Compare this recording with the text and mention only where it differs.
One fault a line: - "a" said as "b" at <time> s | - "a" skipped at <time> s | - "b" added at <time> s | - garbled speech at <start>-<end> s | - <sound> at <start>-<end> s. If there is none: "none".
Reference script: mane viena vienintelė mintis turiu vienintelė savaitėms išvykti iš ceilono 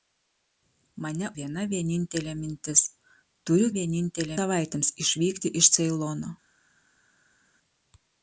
none